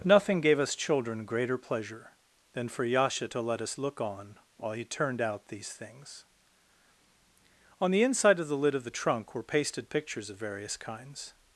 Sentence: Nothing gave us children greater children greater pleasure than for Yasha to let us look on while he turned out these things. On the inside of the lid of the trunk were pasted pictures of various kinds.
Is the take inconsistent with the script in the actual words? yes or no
yes